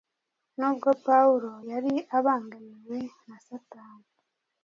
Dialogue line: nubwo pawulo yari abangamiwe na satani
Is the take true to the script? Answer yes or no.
yes